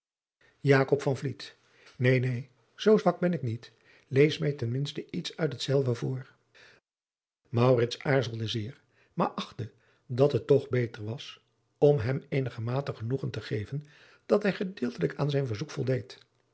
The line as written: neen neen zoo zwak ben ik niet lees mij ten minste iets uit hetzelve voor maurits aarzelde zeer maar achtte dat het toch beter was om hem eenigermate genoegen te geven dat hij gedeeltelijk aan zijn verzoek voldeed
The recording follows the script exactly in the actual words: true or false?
true